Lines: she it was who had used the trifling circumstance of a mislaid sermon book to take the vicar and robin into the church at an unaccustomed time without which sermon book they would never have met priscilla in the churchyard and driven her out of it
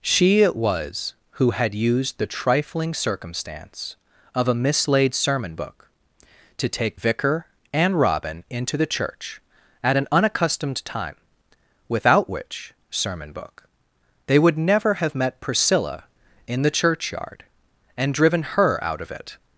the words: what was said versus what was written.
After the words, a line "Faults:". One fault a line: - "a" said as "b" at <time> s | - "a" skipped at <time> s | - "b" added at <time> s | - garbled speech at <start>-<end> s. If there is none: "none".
she it was who had used the trifling circumstance of a mislaid sermon book to take vicar and robin into the church at an unaccustomed time without which sermon book they would never have met priscilla in the churchyard and driven her out of it
Faults:
- "the" skipped at 7.0 s